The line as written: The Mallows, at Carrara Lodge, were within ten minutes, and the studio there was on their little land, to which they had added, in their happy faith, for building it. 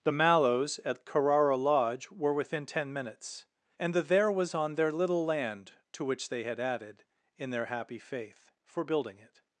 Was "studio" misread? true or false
true